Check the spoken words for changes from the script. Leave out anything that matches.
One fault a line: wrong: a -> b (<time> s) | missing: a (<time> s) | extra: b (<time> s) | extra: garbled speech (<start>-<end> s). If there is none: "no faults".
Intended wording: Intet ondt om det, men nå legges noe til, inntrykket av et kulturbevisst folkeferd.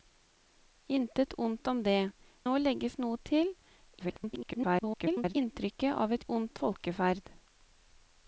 missing: men (2.0 s)
extra: garbled speech (4.0-5.3 s)
wrong: kulturbevisst -> ondt (6.3 s)